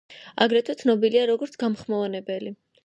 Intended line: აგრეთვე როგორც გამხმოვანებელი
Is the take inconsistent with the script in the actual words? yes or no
yes